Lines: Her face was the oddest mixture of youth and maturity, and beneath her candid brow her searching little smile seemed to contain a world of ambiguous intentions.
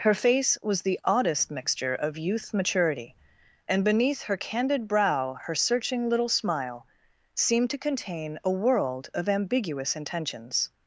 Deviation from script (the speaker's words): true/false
true